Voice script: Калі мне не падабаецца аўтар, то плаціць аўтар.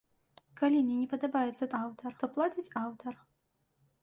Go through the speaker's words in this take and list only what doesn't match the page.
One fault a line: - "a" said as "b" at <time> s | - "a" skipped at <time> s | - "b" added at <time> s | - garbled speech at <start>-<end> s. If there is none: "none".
none